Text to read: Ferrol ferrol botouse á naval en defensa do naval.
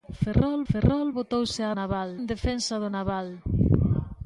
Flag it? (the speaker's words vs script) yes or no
no